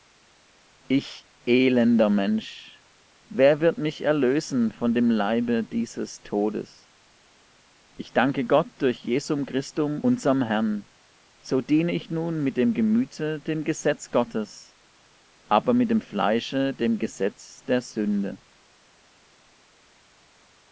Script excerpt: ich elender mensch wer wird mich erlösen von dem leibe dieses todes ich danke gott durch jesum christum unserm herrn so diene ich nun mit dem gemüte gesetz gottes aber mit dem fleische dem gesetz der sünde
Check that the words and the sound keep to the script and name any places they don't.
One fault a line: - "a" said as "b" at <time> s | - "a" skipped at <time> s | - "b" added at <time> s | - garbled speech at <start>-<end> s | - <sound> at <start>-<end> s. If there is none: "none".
- "dem" added at 13.4 s